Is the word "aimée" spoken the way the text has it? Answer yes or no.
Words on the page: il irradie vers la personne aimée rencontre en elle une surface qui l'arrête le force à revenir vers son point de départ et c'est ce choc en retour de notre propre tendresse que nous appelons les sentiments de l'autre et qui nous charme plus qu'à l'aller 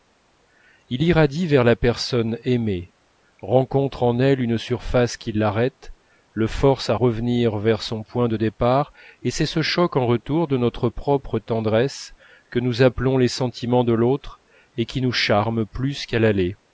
yes